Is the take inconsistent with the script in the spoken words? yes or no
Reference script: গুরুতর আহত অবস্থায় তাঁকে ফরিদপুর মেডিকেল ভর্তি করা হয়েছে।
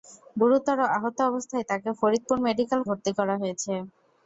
no